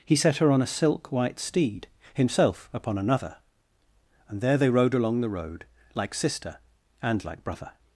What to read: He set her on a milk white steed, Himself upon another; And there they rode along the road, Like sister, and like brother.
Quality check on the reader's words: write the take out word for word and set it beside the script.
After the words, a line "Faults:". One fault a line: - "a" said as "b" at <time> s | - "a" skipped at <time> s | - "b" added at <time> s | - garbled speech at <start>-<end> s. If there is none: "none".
He set her on a silk white steed, Himself upon another; And there they rode along the road, Like sister, and like brother.
Faults:
- "milk" said as "silk" at 0.7 s